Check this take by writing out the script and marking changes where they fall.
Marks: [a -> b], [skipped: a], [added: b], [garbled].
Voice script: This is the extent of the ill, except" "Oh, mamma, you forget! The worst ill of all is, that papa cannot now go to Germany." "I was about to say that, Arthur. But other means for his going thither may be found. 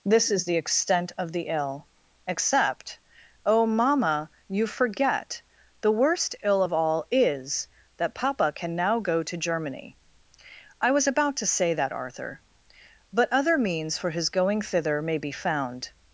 This is the extent of the ill, except" "Oh, mamma, you forget! The worst ill of all is, that papa [cannot -> can] now go to Germany." "I was about to say that, Arthur. But other means for his going thither may be found.